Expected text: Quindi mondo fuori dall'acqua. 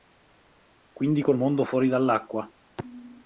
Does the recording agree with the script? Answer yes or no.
no